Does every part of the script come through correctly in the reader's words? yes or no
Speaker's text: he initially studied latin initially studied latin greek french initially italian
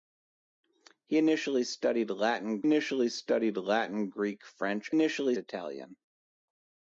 yes